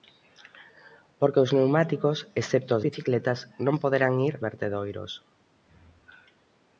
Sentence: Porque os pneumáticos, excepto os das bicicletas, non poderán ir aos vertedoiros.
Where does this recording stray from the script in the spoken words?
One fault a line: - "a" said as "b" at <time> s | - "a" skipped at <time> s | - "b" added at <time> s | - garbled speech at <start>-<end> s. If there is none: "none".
- "das" skipped at 2.9 s
- "aos" skipped at 4.3 s